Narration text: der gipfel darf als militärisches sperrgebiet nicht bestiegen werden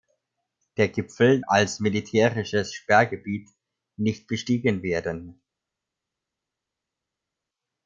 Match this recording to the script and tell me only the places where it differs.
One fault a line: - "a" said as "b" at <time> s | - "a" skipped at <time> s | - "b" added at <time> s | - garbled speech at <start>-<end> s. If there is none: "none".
- "darf" skipped at 1.4 s